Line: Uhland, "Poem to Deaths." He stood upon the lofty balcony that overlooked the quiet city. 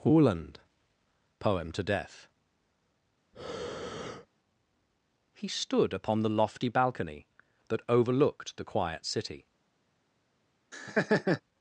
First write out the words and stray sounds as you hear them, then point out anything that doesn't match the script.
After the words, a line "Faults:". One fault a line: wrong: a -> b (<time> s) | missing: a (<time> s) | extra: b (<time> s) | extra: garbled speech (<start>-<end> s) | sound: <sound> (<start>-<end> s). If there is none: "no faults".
Uhland, "Poem to Death." He stood upon the lofty balcony that overlooked the quiet city.
Faults:
wrong: Deaths -> Death (1.8 s)
sound: breath (3.3-4.3 s)
sound: laugh (10.7-11.4 s)